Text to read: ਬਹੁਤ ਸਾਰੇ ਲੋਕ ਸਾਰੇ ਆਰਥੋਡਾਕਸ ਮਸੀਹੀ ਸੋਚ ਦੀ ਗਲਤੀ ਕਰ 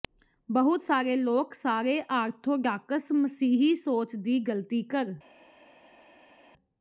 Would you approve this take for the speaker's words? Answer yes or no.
yes